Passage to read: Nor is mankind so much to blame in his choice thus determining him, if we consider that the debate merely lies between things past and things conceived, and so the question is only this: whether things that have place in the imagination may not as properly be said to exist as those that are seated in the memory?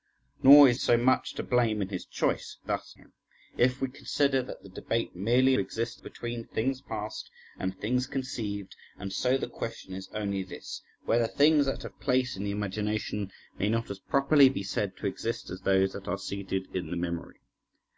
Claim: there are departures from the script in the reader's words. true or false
true